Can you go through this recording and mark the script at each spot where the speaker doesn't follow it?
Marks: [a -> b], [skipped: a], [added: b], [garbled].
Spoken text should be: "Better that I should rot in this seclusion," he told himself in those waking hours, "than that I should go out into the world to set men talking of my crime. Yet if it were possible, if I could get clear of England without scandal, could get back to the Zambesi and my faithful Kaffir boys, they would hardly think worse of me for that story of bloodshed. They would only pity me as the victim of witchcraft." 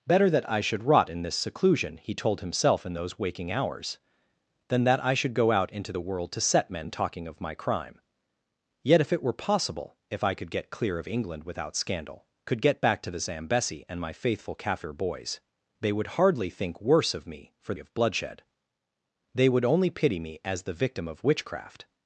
"Better that I should rot in this seclusion," he told himself in those waking hours, "than that I should go out into the world to set men talking of my crime. Yet if it were possible, if I could get clear of England without scandal, could get back to the Zambesi and my faithful Kaffir boys, they would hardly think worse of me for [skipped: that story] of bloodshed. They would only pity me as the victim of witchcraft."